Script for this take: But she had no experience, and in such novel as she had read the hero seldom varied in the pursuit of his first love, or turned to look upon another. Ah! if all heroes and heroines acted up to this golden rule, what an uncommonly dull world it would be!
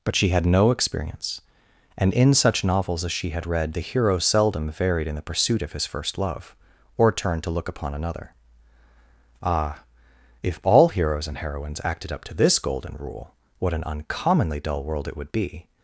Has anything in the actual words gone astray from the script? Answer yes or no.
yes